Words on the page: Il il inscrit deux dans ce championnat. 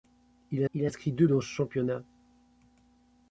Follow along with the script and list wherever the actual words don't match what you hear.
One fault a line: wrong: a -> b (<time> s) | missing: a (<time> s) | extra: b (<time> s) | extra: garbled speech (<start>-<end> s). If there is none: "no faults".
no faults